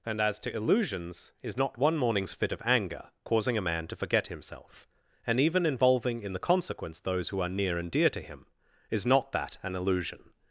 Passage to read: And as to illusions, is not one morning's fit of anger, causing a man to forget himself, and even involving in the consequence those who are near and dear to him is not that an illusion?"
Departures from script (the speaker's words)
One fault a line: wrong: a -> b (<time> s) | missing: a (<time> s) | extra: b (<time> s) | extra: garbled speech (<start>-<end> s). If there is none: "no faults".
no faults